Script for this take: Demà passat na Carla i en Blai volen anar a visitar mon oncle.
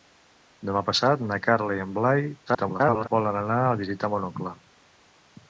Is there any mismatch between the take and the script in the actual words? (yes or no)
yes